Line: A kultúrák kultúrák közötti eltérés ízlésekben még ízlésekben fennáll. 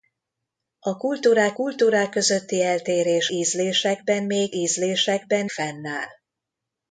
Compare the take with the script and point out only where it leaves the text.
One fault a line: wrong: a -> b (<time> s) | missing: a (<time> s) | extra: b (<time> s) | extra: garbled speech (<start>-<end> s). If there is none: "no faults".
no faults